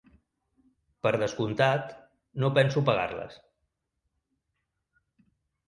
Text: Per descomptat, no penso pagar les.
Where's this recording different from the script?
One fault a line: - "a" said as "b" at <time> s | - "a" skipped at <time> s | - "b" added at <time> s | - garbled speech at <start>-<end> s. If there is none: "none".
none